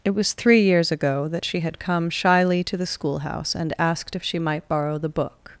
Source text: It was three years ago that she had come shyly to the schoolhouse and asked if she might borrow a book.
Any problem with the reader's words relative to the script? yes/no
yes